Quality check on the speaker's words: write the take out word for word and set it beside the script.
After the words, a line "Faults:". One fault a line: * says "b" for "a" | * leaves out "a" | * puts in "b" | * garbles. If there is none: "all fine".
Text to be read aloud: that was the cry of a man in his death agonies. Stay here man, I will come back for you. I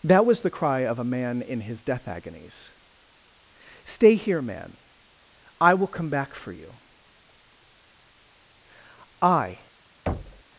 that was the cry of a man in his death agonies. Stay here man, I will come back for you. I
Faults:
all fine